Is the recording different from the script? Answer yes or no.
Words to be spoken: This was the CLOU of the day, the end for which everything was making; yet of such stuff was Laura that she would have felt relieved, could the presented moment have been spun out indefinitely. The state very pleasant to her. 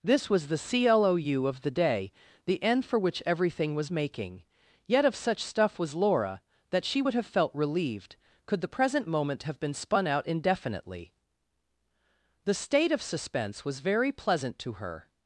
yes